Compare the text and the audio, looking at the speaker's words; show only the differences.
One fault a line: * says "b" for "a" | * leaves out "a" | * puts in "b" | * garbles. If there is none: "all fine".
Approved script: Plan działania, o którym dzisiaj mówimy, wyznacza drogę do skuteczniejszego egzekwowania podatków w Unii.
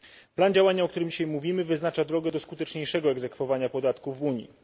all fine